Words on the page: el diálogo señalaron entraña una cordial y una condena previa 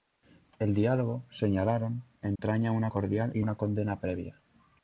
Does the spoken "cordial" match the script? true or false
true